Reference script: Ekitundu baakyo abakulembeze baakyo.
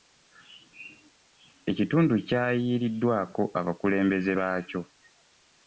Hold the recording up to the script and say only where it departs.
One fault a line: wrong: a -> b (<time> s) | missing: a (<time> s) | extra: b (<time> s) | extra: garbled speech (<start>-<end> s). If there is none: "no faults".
wrong: baakyo -> kyayiiriddwako (2.3 s)